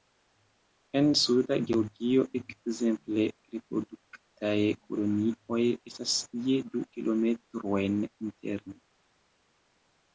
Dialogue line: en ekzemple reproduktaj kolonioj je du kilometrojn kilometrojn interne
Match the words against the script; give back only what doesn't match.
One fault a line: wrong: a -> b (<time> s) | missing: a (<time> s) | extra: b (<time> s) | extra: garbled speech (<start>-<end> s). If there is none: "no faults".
extra: suda georgio (1.2 s)
extra: estas (5.9 s)
missing: kilometrojn (8.0 s)